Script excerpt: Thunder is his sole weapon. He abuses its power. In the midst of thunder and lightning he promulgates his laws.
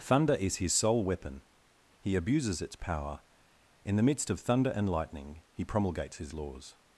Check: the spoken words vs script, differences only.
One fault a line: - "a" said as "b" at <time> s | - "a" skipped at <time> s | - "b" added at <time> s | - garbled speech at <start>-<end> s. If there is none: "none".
none